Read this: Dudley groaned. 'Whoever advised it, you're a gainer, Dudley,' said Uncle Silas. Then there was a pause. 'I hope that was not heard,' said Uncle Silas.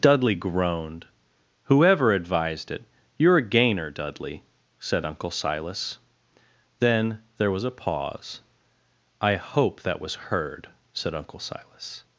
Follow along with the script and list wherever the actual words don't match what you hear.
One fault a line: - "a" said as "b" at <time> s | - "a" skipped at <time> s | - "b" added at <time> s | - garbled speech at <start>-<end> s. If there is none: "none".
- "not" skipped at 10.1 s